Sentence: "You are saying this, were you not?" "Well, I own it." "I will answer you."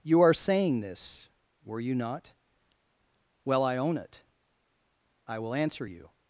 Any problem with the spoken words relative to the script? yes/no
no